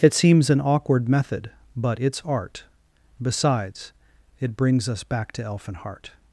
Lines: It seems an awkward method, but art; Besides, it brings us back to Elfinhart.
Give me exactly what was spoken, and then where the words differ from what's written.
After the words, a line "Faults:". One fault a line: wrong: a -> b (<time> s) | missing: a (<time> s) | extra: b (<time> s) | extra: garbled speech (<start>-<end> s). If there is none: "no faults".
It seems an awkward method, but it's art; Besides, it brings us back to Elfinhart.
Faults:
extra: it's (2.0 s)